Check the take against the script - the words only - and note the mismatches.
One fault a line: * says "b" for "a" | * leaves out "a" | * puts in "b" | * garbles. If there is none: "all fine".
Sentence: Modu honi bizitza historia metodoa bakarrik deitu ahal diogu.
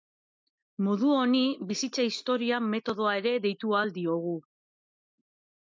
* says "ere" for "bakarrik"